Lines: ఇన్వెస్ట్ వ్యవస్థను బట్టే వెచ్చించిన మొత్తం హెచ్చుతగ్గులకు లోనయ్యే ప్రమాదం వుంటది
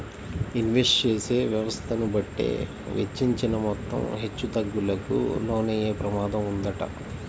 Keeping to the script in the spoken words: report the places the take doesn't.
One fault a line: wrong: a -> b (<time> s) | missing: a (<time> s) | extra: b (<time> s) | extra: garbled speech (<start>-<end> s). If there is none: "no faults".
extra: చేసే (1.0 s)